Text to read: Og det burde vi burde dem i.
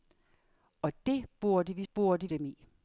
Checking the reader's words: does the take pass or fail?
pass